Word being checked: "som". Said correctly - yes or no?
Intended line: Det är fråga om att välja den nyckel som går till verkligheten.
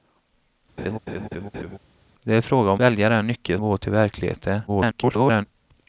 no